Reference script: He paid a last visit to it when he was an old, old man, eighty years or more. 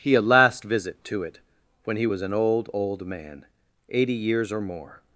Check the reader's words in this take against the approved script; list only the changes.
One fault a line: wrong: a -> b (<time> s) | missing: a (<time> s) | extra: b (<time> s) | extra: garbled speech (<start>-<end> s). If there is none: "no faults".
missing: paid (0.1 s)